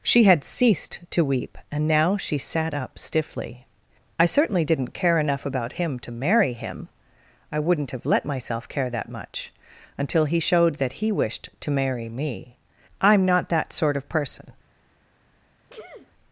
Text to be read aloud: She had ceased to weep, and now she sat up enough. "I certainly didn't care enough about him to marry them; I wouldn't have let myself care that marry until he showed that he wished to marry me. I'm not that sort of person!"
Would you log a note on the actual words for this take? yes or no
yes